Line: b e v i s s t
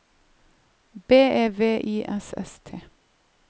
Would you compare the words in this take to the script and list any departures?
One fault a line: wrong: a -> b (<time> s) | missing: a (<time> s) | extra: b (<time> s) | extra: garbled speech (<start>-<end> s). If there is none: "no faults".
no faults